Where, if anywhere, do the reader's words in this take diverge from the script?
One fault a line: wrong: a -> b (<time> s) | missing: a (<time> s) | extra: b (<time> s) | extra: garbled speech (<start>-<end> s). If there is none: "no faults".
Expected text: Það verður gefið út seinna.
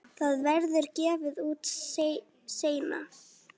no faults